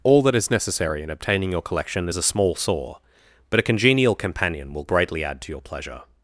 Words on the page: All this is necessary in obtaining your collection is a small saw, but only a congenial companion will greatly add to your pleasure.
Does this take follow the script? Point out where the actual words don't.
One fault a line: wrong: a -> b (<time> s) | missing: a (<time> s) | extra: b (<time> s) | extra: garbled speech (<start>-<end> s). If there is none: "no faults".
wrong: this -> that (0.2 s)
missing: only (3.6 s)